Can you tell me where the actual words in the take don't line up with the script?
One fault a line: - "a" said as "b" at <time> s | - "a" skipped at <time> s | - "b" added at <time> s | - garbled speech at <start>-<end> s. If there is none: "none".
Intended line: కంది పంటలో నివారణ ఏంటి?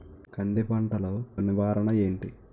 none